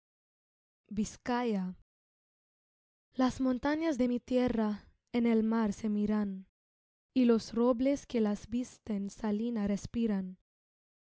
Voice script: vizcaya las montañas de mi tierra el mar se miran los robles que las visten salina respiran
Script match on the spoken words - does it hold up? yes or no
no